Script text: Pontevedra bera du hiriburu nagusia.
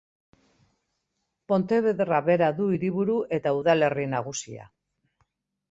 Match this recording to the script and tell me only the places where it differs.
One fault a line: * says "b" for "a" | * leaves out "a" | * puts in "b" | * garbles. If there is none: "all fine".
* puts in "eta udalerri"